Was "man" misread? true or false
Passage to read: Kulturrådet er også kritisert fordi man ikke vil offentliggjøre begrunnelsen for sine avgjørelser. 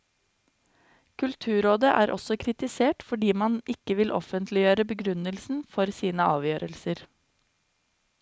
false